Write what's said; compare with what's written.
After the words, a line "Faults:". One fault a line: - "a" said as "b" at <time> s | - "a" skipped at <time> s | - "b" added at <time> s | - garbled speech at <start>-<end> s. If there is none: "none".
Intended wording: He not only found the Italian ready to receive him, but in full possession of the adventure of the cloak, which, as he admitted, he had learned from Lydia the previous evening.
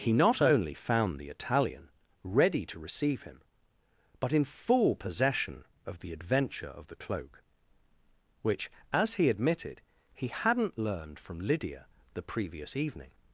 He not only found the Italian ready to receive him, but in full possession of the adventure of the cloak, which, as he admitted, he hadn't learned from Lydia the previous evening.
Faults:
- "had" said as "hadn't" at 10.3 s